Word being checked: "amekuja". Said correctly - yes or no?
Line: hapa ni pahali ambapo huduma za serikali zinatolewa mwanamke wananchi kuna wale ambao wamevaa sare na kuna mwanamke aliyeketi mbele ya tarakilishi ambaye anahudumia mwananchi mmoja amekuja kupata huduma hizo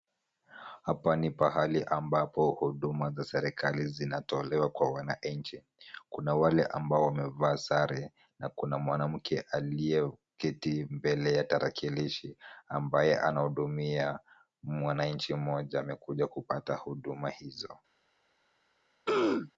yes